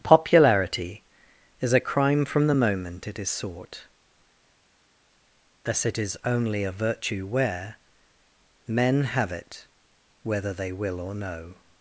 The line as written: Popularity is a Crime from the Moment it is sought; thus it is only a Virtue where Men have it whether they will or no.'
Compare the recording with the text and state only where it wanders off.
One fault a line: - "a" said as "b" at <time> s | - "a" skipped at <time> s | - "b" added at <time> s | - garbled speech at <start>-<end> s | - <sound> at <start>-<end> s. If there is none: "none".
none